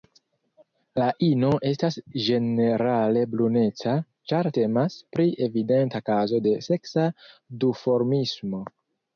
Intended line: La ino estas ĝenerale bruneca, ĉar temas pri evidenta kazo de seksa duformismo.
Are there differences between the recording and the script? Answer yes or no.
no